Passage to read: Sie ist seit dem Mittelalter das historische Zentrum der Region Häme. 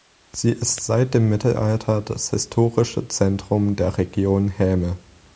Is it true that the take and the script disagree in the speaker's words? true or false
false